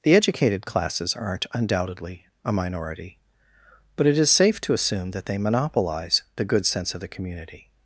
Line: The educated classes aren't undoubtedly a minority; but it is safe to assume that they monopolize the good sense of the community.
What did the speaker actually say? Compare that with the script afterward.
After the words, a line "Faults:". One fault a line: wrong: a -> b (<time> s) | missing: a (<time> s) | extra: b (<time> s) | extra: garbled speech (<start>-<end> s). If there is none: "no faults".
The educated classes aren't undoubtedly a minority; but it is safe to assume that they monopolize the good sense of the community.
Faults:
no faults